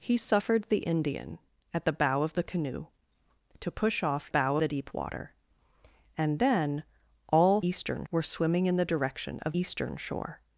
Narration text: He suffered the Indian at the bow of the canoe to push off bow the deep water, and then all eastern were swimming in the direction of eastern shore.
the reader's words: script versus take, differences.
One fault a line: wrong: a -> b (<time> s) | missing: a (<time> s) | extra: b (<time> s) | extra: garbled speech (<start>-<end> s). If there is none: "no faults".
no faults